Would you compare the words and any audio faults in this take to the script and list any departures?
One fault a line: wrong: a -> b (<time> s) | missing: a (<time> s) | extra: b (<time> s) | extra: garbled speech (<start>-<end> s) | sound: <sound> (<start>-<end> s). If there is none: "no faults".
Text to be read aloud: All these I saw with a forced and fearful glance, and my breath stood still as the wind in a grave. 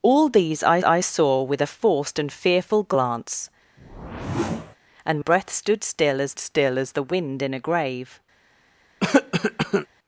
extra: I (0.8 s)
sound: whoosh (3.8-4.8 s)
missing: my (5.2 s)
extra: still as (6.4 s)
sound: cough (9.0-9.9 s)